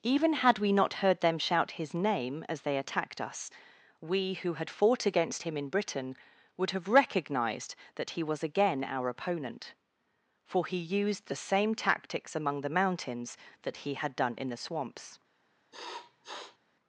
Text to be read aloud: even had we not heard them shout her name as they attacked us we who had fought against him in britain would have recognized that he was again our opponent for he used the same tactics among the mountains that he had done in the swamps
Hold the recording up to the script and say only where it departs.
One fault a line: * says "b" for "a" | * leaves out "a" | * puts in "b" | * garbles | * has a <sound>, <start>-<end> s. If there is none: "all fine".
* says "his" for "her"
* has a sniff, 15.7-16.6 s